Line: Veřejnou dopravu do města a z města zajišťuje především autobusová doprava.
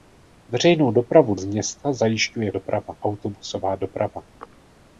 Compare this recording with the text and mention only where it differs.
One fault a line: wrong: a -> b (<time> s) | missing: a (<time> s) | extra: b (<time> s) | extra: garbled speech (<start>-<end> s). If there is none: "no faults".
missing: do města a (1.4 s)
wrong: především -> doprava (2.5 s)